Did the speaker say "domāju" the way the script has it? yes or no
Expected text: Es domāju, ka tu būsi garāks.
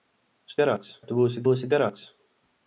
no